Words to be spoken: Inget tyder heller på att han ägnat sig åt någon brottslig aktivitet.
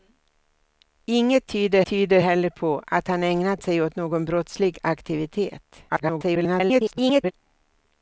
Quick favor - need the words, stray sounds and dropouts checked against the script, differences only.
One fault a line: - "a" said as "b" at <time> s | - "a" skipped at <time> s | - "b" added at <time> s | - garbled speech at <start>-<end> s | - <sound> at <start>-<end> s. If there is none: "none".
- "tyder" added at 1.8 s
- garbled speech at 5.9-7.3 s